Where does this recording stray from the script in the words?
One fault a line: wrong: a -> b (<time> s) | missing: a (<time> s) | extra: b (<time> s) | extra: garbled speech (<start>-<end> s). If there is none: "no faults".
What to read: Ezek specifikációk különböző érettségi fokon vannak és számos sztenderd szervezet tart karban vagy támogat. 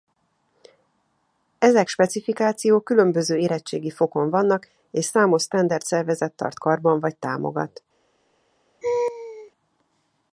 no faults